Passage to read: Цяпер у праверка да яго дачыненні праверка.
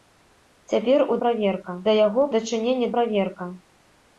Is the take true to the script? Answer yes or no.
yes